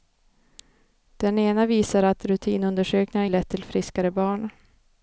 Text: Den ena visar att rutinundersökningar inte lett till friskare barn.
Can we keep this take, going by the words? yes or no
no